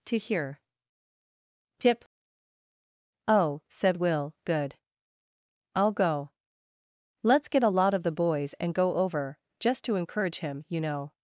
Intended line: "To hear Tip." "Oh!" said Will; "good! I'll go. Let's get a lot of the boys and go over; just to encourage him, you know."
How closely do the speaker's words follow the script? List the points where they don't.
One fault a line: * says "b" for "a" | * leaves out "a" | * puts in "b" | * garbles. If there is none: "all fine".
all fine